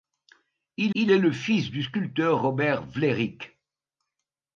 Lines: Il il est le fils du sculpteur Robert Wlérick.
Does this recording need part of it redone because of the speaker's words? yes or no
no